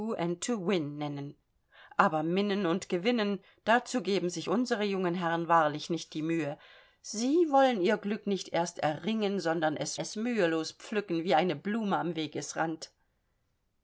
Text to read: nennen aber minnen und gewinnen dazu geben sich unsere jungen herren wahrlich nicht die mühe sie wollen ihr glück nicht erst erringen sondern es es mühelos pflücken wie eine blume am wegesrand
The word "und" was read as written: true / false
true